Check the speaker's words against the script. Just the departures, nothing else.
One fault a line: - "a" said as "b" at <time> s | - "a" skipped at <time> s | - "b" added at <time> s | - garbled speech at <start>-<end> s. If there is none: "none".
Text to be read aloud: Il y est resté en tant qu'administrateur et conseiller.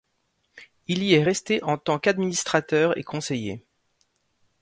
none